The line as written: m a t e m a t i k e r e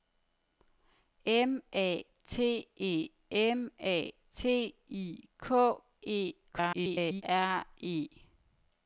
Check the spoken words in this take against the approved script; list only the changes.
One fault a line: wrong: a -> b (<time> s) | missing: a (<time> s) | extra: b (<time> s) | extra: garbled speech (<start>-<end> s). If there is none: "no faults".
extra: garbled speech (6.5-7.2 s)